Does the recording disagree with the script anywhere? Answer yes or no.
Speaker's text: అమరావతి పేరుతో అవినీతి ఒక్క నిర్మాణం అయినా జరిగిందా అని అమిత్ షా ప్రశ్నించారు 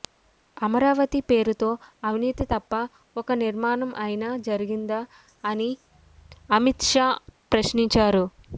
yes